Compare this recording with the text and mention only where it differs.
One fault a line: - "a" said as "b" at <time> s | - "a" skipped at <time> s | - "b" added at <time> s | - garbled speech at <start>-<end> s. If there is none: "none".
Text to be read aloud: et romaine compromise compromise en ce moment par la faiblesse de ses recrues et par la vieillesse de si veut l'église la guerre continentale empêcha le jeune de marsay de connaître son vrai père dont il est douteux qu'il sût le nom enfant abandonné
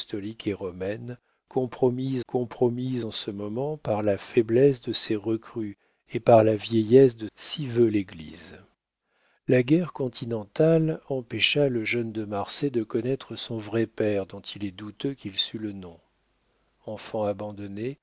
none